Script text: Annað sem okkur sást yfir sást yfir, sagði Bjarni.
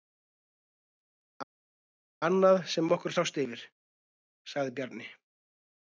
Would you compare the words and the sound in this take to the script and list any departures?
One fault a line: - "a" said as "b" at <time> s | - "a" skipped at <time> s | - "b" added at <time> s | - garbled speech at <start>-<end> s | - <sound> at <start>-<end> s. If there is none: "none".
- "sást yfir" skipped at 3.7 s